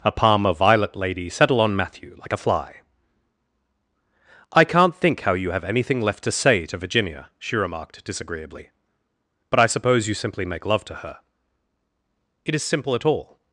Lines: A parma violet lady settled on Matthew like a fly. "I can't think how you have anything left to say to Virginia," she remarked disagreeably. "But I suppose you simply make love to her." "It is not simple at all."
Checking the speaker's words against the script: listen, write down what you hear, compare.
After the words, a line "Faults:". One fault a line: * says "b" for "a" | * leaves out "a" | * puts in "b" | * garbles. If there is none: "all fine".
A parma violet lady settle on Matthew like a fly. "I can't think how you have anything left to say to Virginia," she remarked disagreeably. "But I suppose you simply make love to her." "It is simple at all."
Faults:
* says "settle" for "settled"
* leaves out "not"